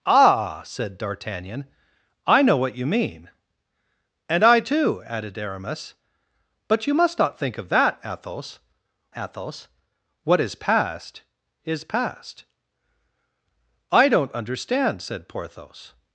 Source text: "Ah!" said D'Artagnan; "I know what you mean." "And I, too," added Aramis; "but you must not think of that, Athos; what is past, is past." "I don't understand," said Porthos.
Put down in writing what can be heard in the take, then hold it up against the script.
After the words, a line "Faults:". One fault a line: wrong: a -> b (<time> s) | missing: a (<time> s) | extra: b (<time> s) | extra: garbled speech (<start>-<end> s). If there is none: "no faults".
"Ah!" said D'Artagnan; "I know what you mean." "And I, too," added Aramis; "but you must not think of that, Athos Athos; what is past, is past." "I don't understand," said Porthos.
Faults:
extra: Athos (9.2 s)